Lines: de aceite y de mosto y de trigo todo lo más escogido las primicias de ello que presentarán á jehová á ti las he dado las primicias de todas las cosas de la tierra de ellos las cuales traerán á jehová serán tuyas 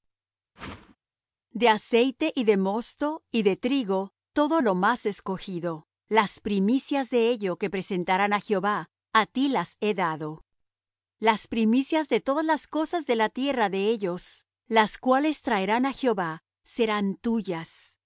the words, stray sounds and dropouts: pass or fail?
fail